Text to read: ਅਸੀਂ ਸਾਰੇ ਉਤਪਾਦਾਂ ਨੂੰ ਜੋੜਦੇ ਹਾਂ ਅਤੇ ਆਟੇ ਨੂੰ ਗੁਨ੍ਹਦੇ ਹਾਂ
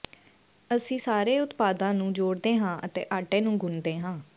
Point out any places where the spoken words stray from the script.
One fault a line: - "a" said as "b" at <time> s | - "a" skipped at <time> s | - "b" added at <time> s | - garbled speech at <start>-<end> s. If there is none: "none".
none